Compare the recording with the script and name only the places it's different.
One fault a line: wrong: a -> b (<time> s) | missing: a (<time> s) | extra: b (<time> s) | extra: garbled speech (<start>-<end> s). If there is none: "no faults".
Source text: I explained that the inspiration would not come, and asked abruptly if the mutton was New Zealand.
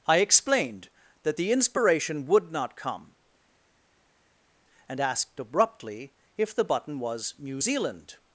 wrong: mutton -> button (6.6 s)